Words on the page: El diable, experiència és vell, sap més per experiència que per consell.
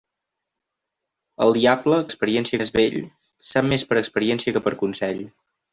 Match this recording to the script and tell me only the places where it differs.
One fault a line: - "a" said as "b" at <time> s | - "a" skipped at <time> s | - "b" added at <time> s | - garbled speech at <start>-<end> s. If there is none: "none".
none